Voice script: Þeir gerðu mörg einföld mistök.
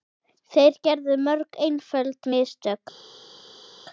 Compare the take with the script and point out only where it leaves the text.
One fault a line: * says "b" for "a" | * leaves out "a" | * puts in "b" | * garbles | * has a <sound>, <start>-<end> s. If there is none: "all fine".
all fine